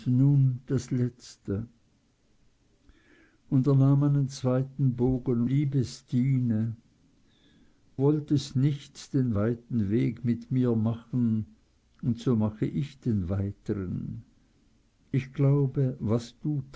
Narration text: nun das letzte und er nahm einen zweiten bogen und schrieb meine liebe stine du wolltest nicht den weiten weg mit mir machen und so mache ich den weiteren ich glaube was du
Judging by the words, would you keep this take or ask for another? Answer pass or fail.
fail